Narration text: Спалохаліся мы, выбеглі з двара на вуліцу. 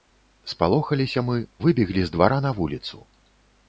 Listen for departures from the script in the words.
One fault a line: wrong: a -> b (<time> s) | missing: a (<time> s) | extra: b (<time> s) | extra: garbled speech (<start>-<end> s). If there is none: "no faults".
no faults